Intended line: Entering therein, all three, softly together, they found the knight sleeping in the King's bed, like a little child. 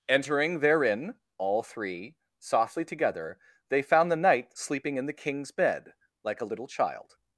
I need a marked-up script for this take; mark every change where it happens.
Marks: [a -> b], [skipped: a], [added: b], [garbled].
Entering therein, all three, softly together, they found the knight sleeping in the King's bed, like a little child.